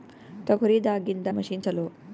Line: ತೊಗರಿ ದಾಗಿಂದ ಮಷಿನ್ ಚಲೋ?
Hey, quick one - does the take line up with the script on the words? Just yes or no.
yes